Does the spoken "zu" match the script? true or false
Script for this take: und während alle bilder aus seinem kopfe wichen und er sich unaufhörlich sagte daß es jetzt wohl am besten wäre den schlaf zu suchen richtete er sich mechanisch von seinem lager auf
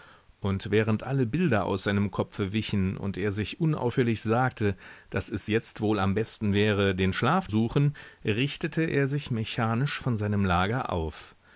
false